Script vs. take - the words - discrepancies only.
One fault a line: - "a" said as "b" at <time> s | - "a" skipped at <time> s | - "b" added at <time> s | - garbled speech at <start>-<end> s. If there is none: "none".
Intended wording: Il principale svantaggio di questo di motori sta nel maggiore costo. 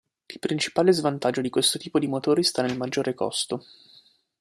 - "tipo" added at 1.8 s